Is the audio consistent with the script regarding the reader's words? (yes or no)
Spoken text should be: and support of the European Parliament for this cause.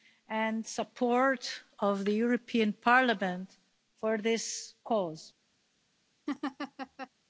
yes